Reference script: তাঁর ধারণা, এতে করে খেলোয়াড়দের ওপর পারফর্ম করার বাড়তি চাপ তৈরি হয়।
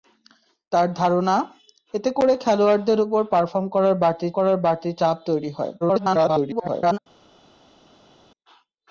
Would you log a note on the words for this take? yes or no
yes